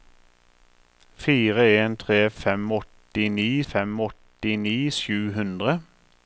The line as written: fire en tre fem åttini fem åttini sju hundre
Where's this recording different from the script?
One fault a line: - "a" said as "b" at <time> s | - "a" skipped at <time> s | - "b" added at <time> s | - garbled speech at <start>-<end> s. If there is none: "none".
none